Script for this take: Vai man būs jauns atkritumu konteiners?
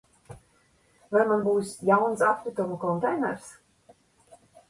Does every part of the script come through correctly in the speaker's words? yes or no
yes